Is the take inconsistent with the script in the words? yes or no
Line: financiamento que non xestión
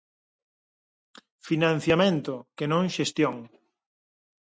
no